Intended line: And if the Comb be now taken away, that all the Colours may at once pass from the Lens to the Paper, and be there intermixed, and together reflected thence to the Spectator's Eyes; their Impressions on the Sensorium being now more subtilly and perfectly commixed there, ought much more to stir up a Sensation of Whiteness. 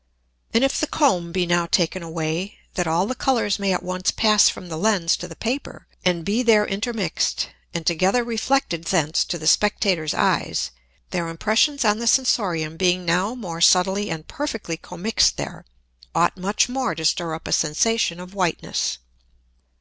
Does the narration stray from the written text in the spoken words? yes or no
no